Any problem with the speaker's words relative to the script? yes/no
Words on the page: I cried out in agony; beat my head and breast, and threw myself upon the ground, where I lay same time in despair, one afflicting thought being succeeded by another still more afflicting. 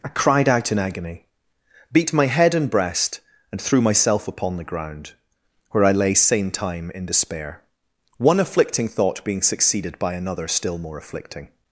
no